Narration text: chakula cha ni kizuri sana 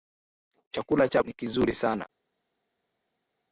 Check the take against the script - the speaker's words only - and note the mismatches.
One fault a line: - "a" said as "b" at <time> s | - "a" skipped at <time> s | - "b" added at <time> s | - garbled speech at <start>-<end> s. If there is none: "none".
none